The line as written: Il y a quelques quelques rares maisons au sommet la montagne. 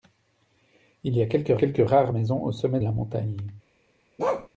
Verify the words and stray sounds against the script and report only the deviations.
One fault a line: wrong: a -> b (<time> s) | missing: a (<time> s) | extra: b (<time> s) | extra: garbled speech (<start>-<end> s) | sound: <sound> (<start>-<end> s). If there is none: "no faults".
sound: bark (4.2-4.5 s)